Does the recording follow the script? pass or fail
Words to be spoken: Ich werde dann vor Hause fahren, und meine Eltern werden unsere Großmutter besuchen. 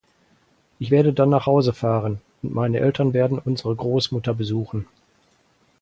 fail